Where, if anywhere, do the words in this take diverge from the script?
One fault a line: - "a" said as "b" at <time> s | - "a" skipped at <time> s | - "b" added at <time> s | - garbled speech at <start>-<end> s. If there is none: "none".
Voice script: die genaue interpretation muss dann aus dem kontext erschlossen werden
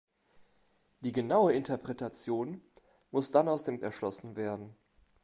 - "kontext" skipped at 3.8 s